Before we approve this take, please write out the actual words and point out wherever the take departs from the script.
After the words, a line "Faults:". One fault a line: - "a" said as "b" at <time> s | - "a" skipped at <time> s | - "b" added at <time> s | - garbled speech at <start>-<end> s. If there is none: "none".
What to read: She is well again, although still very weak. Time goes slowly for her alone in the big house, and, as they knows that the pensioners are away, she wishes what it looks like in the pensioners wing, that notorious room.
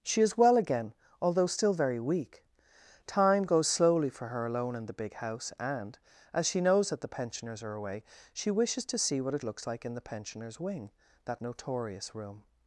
She is well again, although still very weak. Time goes slowly for her alone in the big house, and, as she knows that the pensioners are away, she wishes to see what it looks like in the pensioners wing, that notorious room.
Faults:
- "they" said as "she" at 6.5 s
- "to see" added at 8.8 s